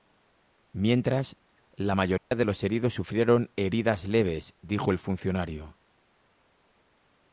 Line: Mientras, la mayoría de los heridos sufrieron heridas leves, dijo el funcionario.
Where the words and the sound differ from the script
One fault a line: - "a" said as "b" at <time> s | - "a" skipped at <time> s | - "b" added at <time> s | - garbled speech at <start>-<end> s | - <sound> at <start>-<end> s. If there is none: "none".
- dropout at 2.2-2.3 s